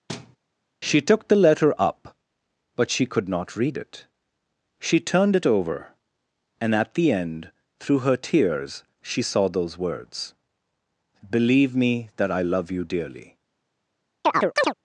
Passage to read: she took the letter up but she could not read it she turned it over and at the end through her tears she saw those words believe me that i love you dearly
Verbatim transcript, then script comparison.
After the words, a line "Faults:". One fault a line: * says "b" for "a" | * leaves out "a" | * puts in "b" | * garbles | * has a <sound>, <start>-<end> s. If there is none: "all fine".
she took the letter up but she could not read it she turned it over and at the end through her tears she saw those words believe me that i love you dearly
Faults:
* has a thud, 0.1-0.4 s
* has a chirp, 14.2-14.7 s